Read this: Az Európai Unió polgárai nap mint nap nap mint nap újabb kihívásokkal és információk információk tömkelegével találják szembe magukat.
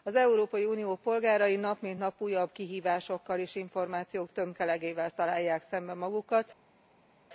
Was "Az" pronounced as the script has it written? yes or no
yes